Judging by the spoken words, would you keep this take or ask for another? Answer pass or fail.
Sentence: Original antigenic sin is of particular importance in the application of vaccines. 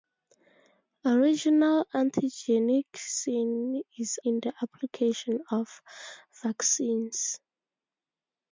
fail